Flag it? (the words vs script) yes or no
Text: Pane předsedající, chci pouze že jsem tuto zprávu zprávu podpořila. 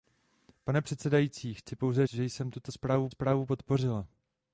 no